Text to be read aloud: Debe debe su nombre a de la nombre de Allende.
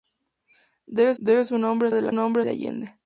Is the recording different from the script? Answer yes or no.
no